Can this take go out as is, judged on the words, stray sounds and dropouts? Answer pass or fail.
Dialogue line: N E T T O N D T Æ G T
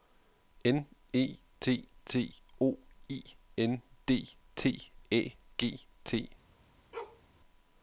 fail